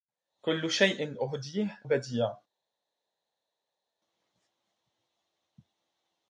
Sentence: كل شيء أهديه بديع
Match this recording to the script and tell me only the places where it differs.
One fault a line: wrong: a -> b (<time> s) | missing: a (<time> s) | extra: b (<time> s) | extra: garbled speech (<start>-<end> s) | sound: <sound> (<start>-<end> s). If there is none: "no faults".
no faults